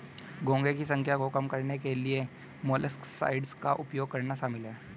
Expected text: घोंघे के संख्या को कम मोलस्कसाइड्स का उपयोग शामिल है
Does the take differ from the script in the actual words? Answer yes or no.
yes